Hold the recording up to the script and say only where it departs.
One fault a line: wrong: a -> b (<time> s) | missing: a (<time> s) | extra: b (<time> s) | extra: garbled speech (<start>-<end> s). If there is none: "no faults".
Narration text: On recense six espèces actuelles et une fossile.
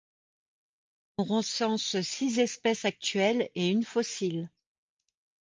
no faults